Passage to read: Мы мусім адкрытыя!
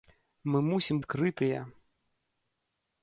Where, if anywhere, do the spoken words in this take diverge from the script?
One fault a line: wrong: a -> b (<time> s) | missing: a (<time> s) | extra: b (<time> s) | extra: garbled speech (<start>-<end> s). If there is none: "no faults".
no faults